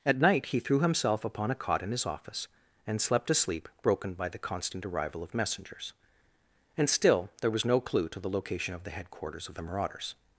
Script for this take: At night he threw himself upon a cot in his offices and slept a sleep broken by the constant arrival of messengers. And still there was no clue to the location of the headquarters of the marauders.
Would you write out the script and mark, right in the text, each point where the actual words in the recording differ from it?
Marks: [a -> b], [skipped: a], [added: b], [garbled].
At night he threw himself upon a cot in his [offices -> office] and slept a sleep broken by the constant arrival of messengers. And still there was no clue to the location of the headquarters of the marauders.